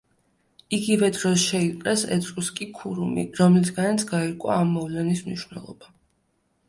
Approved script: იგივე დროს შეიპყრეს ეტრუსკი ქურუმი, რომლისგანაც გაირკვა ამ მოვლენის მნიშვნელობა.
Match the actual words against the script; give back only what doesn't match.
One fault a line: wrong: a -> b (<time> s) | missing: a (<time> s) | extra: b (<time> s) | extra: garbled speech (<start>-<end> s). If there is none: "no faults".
no faults